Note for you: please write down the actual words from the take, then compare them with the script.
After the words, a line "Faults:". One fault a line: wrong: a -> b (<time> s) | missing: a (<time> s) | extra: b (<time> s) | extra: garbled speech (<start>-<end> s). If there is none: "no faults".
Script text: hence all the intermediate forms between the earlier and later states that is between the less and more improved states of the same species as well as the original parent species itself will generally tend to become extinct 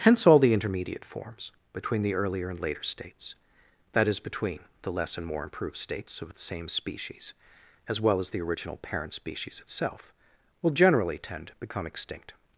hence all the intermediate forms between the earlier and later states that is between the less and more improved states of the same species as well as the original parent species itself will generally tend to become extinct
Faults:
no faults